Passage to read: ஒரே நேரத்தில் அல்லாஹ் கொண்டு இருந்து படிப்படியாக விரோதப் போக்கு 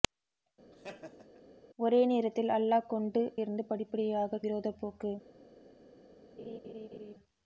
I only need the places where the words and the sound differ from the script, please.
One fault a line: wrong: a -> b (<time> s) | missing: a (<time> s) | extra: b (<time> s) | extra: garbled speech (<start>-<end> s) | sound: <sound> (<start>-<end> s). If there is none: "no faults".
sound: laugh (0.7-1.4 s)
sound: laugh (6.4-7.1 s)